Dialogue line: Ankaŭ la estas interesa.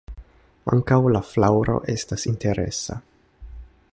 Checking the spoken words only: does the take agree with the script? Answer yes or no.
no